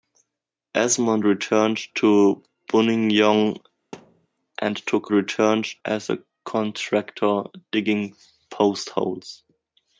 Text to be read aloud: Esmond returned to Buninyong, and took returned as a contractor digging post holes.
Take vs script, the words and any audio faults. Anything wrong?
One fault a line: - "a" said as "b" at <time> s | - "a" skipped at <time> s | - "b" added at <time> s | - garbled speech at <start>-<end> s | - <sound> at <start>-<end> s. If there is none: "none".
- thud at 3.9-4.3 s